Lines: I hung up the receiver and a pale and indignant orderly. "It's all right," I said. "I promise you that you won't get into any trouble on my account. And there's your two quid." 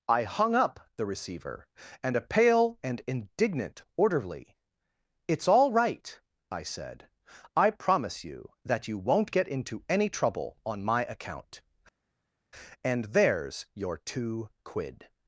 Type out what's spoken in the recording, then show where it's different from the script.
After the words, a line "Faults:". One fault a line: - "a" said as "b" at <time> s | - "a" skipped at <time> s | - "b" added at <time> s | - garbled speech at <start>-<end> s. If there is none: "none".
I hung up the receiver and a pale and indignant orderly. "It's all right," I said. "I promise you that you won't get into any trouble on my account. And there's your two quid."
Faults:
none